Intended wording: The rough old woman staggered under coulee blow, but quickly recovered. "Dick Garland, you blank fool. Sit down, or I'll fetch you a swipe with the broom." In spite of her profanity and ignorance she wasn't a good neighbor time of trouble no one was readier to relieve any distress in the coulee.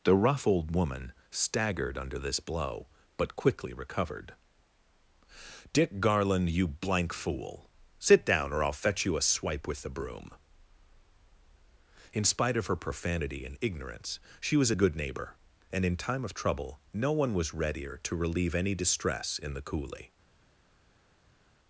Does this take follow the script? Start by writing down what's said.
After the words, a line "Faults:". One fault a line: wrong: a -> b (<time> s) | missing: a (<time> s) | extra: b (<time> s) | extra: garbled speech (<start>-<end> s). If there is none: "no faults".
The rough old woman staggered under this blow, but quickly recovered. "Dick Garland, you blank fool. Sit down, or I'll fetch you a swipe with the broom." In spite of her profanity and ignorance she was a good neighbor and in time of trouble no one was readier to relieve any distress in the coulee.
Faults:
wrong: coulee -> this (2.2 s)
wrong: wasn't -> was (14.6 s)
extra: and in (15.7 s)